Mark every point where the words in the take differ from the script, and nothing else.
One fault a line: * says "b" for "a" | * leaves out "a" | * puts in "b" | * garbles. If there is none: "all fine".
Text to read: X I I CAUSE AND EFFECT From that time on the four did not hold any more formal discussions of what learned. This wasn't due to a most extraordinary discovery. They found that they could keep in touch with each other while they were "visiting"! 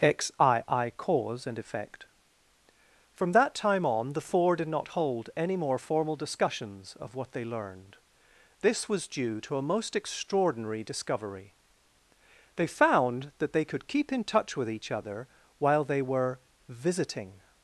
* puts in "they"
* says "was" for "wasn't"